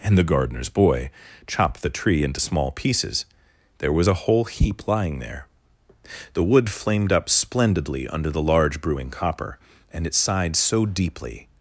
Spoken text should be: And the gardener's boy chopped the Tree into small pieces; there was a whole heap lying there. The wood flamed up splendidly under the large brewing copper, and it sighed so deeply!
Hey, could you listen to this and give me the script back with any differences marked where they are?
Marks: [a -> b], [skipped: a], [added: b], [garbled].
And the gardener's boy chopped the Tree into small pieces; there was a whole heap lying there. The wood flamed up splendidly under the large brewing copper, and it sighed so deeply!